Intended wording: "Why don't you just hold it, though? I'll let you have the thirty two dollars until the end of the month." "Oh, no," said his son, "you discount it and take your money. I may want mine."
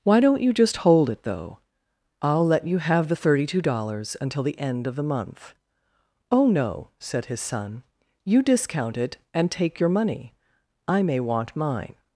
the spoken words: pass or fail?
pass